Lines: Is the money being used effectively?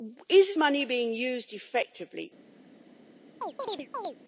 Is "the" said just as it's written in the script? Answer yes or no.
no